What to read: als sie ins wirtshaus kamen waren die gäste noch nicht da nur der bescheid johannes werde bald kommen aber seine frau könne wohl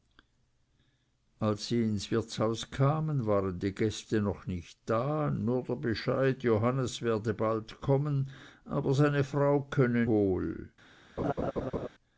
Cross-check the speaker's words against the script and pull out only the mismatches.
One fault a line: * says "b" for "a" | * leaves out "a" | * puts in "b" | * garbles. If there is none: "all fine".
all fine